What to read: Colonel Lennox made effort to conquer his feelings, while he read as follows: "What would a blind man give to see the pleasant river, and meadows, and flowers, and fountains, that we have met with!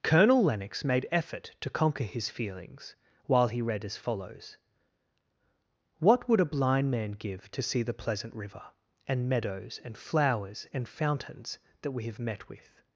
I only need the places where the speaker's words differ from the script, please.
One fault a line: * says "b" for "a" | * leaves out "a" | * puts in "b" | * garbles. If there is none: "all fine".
all fine